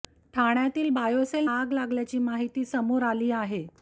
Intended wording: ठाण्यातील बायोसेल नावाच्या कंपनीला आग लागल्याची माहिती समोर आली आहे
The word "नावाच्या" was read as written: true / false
false